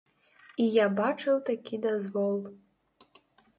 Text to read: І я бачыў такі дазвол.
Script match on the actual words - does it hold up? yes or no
yes